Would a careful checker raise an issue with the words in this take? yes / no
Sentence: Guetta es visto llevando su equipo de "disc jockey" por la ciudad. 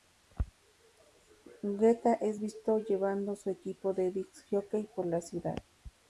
no